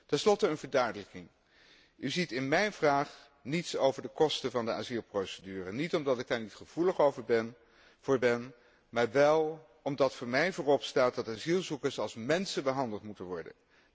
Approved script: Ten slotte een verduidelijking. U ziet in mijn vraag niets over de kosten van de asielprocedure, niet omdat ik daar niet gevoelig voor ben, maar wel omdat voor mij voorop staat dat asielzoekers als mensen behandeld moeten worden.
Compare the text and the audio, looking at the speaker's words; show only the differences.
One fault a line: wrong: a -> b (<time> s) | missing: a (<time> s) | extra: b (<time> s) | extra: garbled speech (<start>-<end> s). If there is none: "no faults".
no faults